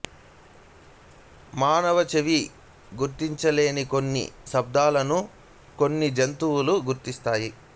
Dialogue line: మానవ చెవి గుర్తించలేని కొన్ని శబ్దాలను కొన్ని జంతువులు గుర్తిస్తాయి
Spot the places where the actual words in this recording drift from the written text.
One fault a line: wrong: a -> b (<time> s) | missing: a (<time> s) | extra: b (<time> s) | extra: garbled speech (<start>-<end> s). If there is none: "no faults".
no faults